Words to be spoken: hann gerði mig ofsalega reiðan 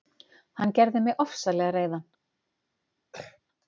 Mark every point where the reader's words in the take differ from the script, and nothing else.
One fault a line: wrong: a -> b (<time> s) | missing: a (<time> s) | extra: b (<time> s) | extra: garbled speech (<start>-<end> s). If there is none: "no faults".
no faults